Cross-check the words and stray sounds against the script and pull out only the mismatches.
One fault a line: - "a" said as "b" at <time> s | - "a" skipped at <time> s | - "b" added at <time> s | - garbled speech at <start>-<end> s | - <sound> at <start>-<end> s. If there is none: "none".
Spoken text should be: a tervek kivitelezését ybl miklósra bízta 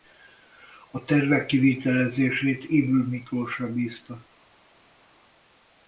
none